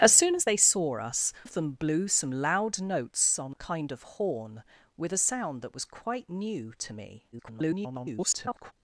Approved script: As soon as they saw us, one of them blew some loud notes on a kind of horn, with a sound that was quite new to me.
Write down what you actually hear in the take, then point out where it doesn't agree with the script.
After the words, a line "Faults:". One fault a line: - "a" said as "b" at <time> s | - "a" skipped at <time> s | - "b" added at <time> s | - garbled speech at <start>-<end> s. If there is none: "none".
As soon as they saw us, of them blew some loud notes on kind of horn, with a sound that was quite new to me. [garbled]
Faults:
- "one" skipped at 1.3 s
- "a" skipped at 3.6 s
- garbled speech at 7.3-8.7 s